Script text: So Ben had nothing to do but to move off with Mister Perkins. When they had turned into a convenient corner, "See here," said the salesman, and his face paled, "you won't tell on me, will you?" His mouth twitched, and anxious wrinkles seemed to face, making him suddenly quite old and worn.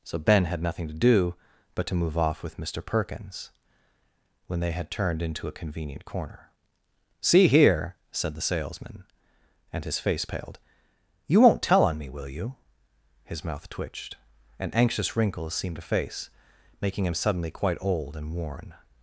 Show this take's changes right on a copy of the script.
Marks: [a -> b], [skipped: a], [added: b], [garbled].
So Ben had nothing to do but to move off with Mister Perkins. When they had turned into a convenient corner, "See here," said the salesman, and his face paled, "you won't tell on me, will you?" His mouth twitched, and anxious wrinkles seemed to face, making him suddenly quite old and worn.